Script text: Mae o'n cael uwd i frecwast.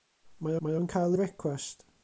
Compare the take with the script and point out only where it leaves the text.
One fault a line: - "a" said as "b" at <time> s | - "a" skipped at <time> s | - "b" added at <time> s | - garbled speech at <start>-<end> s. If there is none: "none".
- "mae" added at 0.6 s
- "uwd" skipped at 1.2 s